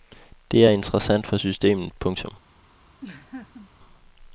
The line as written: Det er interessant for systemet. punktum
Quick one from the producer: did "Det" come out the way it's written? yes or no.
yes